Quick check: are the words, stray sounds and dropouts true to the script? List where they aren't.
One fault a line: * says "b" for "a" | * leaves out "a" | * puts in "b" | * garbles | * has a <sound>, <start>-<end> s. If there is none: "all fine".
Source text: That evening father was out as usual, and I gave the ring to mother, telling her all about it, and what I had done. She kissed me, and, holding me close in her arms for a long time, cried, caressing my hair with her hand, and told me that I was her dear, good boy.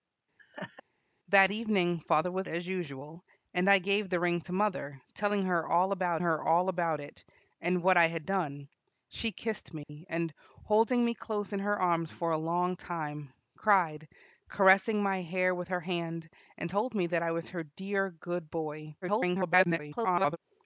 * has a laugh, 0.4-0.8 s
* leaves out "out"
* puts in "her all about"
* has a dropout, 9.8-9.9 s
* garbles